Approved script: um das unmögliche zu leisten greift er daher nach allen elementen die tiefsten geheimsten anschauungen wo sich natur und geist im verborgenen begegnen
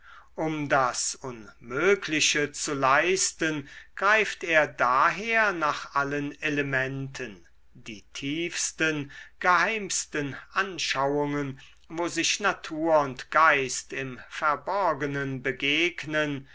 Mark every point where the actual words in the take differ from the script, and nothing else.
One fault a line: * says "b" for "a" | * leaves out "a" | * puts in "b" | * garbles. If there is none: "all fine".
all fine